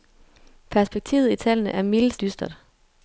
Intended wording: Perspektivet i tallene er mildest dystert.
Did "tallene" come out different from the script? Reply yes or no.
no